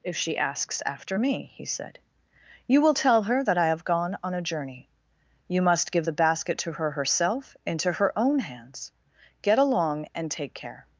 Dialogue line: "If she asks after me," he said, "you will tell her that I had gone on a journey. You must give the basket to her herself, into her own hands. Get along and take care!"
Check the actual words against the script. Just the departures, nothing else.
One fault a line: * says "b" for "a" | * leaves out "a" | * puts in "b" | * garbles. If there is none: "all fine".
* says "have" for "had"